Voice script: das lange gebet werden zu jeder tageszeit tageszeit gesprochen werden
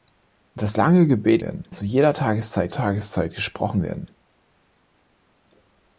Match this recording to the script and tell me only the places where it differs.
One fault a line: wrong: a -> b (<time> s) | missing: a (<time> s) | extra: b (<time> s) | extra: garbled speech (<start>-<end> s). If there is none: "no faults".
no faults